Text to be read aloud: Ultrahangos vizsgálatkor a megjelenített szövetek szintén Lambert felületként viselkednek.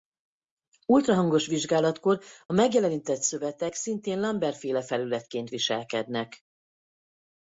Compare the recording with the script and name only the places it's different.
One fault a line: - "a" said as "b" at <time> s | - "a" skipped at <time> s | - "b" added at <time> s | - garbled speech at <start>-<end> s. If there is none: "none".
- "féle" added at 4.6 s